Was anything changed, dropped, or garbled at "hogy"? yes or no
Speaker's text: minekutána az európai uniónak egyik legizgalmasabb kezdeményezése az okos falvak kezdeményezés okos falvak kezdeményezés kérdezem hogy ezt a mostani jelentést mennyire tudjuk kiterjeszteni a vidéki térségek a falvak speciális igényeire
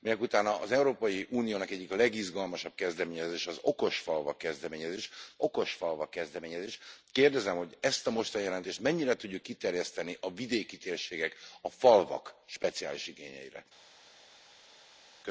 no